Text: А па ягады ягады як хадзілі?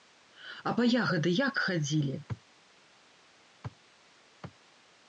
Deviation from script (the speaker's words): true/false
true